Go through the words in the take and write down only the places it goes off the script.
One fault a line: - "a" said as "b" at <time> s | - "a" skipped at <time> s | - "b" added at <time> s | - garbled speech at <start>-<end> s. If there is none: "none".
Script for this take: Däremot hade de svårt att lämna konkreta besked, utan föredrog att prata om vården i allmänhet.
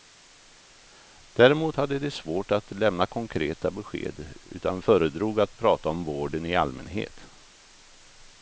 none